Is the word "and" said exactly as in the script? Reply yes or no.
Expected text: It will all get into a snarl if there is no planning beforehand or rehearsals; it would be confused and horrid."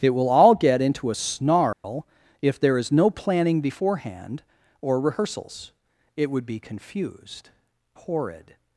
no